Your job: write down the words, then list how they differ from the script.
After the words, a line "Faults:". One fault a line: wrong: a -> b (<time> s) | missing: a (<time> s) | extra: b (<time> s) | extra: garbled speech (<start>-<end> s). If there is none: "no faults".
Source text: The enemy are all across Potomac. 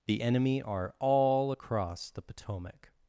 The enemy are all across the Potomac.
Faults:
extra: the (2.1 s)